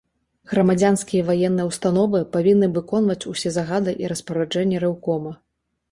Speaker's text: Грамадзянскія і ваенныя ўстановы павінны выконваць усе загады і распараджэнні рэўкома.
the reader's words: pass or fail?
pass